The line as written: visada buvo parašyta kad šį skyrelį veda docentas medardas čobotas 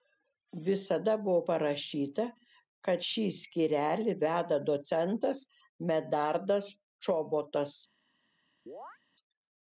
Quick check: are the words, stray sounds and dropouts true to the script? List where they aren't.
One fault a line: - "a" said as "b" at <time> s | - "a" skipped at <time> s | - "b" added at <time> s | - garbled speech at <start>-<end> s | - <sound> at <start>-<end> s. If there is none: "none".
- chirp at 8.7-9.0 s